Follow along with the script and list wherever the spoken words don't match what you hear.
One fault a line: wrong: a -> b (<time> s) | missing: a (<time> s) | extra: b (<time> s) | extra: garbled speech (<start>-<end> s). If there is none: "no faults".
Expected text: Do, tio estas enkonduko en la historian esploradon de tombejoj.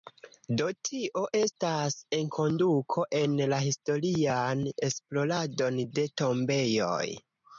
no faults